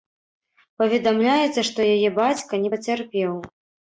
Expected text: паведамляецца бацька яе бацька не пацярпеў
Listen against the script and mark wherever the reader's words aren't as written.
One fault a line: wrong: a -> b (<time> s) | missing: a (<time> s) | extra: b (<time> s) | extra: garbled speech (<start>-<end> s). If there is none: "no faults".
wrong: бацька -> што (1.7 s)